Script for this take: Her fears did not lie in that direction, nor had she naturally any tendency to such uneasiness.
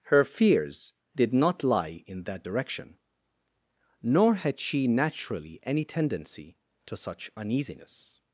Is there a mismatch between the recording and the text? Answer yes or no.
no